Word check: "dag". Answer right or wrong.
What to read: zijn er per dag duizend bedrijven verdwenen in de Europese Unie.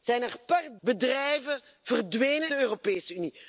wrong